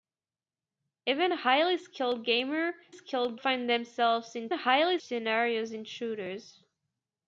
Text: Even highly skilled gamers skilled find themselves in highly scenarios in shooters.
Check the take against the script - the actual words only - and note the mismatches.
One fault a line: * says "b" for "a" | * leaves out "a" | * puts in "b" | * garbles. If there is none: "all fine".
all fine